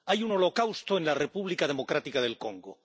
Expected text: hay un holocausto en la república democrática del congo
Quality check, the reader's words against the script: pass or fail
pass